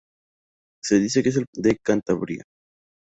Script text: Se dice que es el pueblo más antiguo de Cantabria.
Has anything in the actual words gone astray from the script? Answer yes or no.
yes